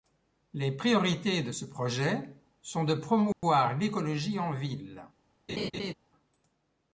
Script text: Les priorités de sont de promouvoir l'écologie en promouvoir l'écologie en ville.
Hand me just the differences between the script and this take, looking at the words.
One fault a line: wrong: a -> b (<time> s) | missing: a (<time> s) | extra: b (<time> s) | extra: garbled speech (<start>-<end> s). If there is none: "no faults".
extra: ce projet (1.5 s)
missing: promouvoir l'écologie en (4.5 s)